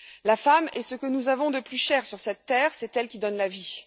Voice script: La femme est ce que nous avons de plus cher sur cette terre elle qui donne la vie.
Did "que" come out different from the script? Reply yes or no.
no